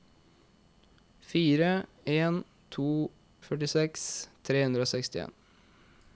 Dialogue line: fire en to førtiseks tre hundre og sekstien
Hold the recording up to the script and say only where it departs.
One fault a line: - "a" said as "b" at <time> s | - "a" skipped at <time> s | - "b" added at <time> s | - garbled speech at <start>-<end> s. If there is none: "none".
none